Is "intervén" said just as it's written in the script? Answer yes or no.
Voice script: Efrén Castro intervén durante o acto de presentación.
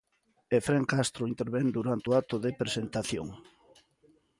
yes